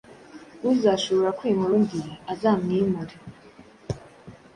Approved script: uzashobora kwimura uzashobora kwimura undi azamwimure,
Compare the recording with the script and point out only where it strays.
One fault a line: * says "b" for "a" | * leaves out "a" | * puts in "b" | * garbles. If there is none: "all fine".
* leaves out "uzashobora kwimura"